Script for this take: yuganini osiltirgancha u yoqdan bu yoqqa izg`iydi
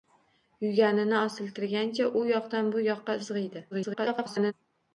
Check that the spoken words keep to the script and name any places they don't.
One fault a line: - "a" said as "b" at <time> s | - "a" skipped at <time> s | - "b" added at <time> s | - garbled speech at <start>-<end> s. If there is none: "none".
- garbled speech at 3.7-4.5 s